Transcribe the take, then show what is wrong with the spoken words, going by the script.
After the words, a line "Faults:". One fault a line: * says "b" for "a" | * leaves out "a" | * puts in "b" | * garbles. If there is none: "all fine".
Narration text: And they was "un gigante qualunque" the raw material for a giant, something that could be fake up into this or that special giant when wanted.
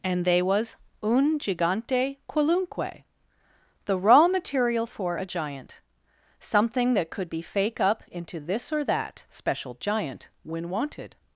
And they was "un gigante qualunque" the raw material for a giant, something that could be fake up into this or that special giant when wanted.
Faults:
all fine